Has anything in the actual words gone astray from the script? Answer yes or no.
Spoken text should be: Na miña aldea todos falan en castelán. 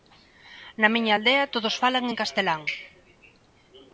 no